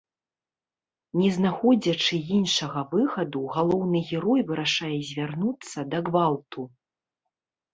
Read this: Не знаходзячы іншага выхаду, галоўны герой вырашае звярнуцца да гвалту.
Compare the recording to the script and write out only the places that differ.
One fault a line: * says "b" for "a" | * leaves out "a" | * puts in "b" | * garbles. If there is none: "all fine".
all fine